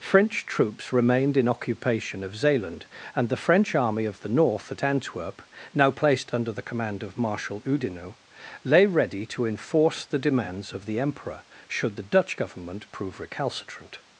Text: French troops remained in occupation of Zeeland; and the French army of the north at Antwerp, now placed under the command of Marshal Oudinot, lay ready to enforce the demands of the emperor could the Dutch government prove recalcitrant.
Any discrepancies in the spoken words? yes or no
yes